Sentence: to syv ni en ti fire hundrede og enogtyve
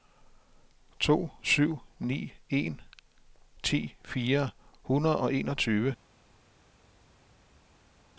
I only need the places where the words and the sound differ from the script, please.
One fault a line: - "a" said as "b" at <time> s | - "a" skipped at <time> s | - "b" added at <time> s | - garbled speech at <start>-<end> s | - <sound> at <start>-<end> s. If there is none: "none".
none